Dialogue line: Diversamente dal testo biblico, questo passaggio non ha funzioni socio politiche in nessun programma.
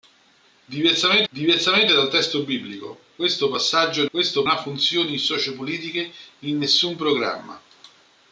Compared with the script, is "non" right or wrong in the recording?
wrong